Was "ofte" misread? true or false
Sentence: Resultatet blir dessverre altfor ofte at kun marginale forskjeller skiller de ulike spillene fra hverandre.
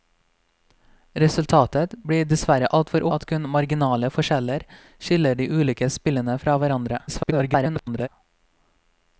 true